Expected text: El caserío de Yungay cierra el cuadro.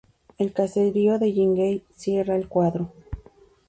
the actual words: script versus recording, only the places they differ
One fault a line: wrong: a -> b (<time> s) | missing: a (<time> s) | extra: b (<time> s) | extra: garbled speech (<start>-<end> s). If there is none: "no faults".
no faults